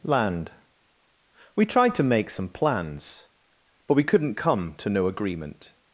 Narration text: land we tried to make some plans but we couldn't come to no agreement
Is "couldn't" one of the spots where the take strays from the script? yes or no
no